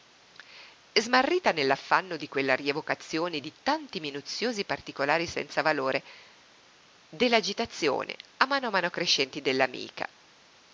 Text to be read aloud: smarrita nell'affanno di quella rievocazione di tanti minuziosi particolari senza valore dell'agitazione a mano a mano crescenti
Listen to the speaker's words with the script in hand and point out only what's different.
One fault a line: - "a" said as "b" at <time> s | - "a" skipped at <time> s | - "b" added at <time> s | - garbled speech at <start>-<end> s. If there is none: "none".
none